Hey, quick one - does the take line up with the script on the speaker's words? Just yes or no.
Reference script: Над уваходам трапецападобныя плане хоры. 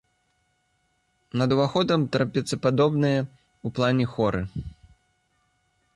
no